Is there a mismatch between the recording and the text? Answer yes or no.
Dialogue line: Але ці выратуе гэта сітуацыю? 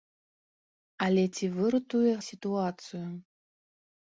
yes